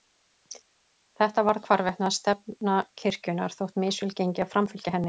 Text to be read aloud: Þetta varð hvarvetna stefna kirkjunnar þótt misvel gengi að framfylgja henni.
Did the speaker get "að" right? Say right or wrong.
right